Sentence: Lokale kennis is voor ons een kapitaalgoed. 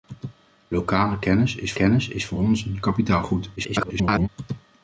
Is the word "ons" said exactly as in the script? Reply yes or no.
yes